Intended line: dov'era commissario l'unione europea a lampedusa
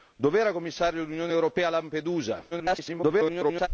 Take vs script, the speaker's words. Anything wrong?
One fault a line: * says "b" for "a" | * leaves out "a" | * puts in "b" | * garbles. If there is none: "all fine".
* garbles